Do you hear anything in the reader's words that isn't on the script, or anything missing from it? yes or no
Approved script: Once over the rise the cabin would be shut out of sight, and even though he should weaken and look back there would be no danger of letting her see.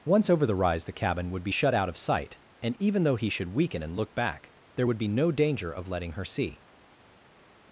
no